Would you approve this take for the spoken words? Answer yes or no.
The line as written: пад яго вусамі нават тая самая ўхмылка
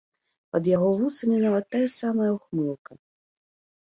yes